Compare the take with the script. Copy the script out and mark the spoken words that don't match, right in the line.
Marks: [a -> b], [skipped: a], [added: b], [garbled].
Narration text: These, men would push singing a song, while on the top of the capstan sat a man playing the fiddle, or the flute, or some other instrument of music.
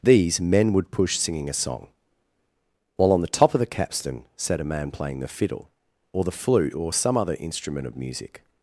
These, men would push singing a song, while on the top of the capstan sat a man playing the fiddle, or the flute, or some other instrument of music.